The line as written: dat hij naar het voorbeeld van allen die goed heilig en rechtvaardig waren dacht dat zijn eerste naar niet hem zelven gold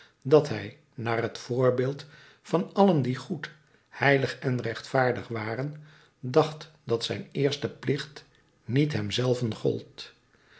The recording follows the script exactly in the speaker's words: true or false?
false